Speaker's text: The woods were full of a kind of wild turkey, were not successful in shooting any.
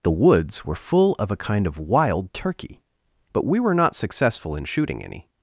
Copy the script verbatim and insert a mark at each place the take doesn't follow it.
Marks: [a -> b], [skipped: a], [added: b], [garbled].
The woods were full of a kind of wild turkey, [added: but we] were not successful in shooting any.